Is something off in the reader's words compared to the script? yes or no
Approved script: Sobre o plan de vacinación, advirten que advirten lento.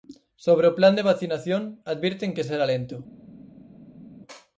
yes